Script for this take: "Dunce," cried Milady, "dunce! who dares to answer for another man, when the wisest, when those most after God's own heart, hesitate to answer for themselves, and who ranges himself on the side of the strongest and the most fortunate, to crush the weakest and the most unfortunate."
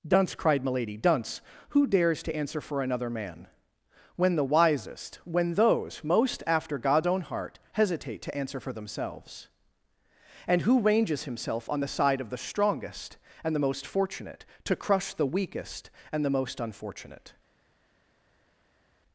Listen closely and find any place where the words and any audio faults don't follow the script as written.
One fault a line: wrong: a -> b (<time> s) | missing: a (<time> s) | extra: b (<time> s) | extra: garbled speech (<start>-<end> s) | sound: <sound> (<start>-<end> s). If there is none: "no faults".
no faults